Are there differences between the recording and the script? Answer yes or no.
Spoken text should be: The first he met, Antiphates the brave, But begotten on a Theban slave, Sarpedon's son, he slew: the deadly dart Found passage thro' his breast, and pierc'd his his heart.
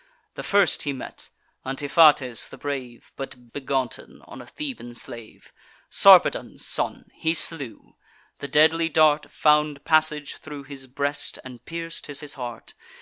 no